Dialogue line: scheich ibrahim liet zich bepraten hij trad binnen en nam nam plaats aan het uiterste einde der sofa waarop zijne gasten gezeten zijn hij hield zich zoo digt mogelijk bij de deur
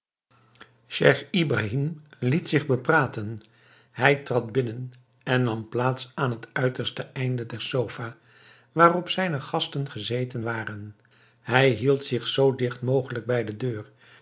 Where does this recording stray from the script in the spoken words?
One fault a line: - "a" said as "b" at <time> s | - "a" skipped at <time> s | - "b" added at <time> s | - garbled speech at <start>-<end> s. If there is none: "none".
- "nam" skipped at 5.7 s
- "zijn" said as "waren" at 10.4 s